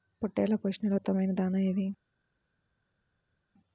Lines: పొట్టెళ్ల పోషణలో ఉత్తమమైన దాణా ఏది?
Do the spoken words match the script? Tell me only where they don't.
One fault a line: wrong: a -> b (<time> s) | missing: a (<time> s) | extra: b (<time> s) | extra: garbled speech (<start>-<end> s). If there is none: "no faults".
no faults